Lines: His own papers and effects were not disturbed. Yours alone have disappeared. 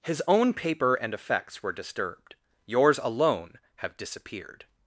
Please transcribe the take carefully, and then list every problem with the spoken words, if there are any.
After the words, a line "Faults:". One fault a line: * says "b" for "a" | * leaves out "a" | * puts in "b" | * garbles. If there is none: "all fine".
His own paper and effects were disturbed. Yours alone have disappeared.
Faults:
* says "paper" for "papers"
* leaves out "not"